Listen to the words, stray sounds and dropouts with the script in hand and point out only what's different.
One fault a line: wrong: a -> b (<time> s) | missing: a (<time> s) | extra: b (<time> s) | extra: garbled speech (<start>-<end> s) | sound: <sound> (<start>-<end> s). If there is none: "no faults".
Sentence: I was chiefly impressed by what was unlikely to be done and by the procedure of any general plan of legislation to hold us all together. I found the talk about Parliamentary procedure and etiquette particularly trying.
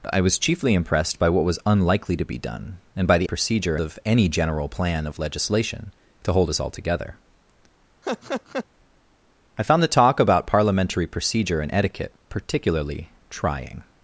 sound: laugh (8.0-8.7 s)